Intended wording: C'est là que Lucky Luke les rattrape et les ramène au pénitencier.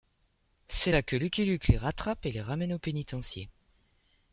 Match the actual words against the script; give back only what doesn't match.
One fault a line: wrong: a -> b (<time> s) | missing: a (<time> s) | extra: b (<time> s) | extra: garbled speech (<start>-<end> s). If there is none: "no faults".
no faults